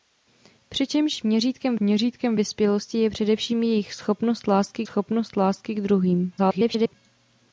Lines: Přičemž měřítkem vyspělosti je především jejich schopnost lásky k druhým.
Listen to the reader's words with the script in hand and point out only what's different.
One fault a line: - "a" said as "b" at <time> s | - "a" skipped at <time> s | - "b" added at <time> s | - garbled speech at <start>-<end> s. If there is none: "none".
- "měřítkem" added at 1.8 s
- "schopnost lásky" added at 4.8 s
- garbled speech at 6.4-6.9 s